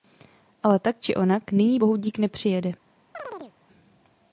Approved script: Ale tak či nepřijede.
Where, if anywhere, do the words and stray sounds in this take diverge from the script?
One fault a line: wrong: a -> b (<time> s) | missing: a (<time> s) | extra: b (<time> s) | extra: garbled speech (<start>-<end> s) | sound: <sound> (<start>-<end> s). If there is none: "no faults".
extra: onak nyní bohudík (1.1 s)
sound: chirp (3.1-3.5 s)